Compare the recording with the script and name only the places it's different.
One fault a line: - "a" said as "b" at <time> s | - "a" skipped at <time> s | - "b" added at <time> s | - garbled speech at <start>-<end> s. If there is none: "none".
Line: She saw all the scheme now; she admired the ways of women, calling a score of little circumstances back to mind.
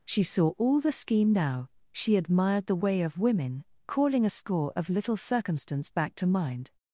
- "ways" said as "way" at 2.8 s
- "circumstances" said as "circumstance" at 5.2 s